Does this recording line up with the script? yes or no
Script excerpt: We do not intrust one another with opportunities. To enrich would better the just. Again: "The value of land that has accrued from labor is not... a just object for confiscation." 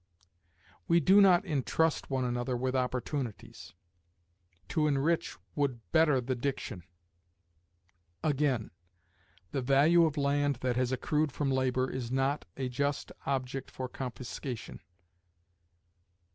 no